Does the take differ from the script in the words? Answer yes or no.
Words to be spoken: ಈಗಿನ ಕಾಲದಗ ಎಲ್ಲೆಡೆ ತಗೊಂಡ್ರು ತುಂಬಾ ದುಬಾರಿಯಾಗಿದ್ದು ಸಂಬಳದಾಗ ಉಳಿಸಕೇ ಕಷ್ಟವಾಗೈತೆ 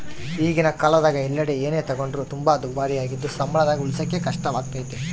yes